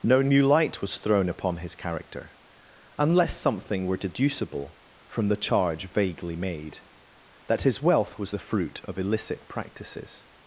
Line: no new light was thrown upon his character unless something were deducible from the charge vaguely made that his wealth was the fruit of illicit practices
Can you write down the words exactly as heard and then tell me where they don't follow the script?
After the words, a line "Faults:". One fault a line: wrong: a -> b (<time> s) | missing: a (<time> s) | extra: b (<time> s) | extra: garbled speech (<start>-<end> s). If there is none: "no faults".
no new light was thrown upon his character unless something were deducible from the charge vaguely made that his wealth was the fruit of illicit practices
Faults:
no faults